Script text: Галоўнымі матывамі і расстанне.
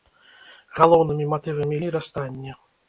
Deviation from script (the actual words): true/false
false